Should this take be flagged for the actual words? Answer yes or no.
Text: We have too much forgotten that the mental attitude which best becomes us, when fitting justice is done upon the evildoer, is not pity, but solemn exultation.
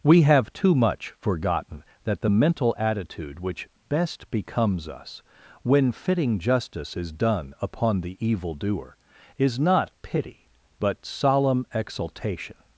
no